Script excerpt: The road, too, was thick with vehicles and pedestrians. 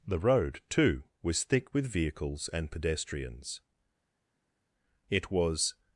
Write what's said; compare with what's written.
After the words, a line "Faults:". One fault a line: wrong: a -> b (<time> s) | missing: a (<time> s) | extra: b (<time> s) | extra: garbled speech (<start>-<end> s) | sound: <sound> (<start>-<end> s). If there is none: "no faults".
The road, too, was thick with vehicles and pedestrians. It was
Faults:
extra: It was (5.1 s)